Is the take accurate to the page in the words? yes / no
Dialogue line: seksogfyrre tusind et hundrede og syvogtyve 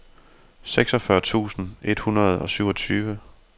yes